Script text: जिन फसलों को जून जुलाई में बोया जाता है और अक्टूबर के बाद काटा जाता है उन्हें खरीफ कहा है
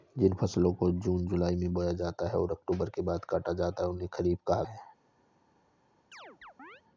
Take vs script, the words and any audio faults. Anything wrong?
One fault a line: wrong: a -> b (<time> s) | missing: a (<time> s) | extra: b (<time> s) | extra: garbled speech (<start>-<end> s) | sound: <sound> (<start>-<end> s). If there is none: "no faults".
sound: chirp (6.1-6.8 s)